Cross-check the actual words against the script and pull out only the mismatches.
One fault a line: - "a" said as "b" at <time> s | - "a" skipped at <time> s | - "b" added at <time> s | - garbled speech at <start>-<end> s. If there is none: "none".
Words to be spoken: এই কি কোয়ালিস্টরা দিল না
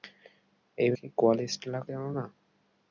none